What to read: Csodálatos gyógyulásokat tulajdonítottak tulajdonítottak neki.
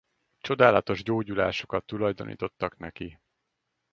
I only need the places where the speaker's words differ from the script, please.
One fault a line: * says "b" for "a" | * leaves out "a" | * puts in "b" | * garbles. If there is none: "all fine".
* leaves out "tulajdonítottak"